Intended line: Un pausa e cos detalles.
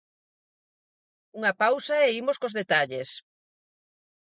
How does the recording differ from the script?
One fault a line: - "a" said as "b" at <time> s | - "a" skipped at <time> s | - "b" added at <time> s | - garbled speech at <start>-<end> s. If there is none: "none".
- "Un" said as "Unha" at 1.4 s
- "imos" added at 2.2 s